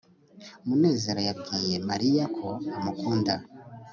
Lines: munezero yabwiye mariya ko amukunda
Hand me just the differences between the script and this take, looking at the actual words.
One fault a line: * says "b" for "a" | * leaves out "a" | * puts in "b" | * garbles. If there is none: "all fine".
all fine